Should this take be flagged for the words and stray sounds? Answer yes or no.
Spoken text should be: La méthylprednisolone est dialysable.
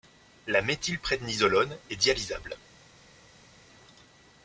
no